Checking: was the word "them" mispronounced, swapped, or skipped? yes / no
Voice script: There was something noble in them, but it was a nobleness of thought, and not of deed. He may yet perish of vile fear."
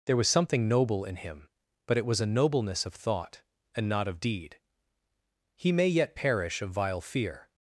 yes